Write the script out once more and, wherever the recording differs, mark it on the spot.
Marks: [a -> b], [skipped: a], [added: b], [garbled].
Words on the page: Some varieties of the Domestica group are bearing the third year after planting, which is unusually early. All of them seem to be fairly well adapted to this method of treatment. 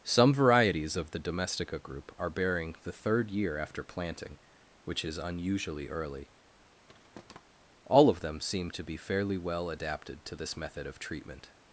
Some varieties of the Domestica group are bearing the third year after planting, which is unusually early. All of them seem to be fairly well adapted to this method of treatment.